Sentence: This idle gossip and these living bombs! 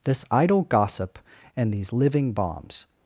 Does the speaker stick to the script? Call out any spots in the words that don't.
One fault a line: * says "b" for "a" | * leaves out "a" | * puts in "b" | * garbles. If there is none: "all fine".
all fine